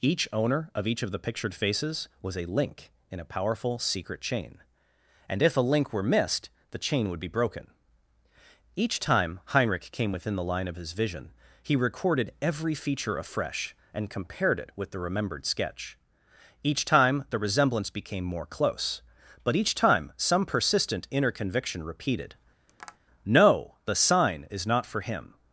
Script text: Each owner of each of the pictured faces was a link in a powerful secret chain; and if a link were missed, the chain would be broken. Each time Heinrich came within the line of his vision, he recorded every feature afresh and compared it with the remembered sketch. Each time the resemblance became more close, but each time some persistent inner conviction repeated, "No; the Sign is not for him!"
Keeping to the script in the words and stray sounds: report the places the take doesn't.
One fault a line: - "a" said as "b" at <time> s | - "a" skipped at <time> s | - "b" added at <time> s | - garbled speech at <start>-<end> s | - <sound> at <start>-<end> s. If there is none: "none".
- tap at 22.7-23.0 s